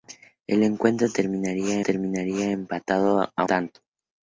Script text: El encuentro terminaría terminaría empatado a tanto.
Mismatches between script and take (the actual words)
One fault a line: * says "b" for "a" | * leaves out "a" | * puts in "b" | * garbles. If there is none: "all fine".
all fine